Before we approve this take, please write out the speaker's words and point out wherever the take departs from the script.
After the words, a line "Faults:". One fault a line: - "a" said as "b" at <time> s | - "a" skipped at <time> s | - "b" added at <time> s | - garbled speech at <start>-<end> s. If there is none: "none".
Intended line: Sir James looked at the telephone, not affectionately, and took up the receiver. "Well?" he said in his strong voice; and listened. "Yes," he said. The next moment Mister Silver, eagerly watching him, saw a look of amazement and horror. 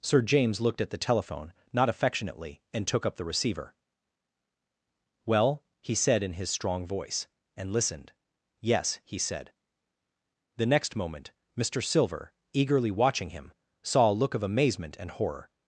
Sir James looked at the telephone, not affectionately, and took up the receiver. "Well?" he said in his strong voice; and listened. "Yes," he said. The next moment Mister Silver, eagerly watching him, saw a look of amazement and horror.
Faults:
none